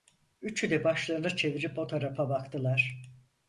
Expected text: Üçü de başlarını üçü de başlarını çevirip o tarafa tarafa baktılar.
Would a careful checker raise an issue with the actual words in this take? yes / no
yes